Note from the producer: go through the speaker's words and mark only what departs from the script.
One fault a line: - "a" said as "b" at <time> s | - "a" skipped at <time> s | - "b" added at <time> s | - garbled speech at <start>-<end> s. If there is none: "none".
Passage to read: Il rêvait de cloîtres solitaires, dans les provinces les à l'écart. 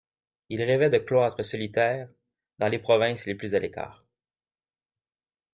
- "plus" added at 3.4 s